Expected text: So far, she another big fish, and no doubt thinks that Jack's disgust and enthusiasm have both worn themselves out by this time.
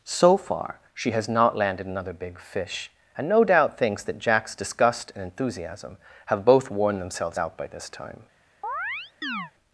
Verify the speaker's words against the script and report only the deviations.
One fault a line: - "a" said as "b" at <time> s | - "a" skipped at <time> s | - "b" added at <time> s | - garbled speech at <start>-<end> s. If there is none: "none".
- "has not landed" added at 1.1 s